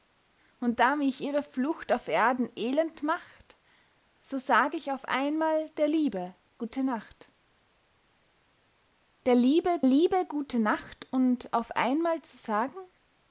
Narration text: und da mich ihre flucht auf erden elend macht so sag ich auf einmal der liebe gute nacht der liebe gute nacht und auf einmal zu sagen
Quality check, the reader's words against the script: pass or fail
fail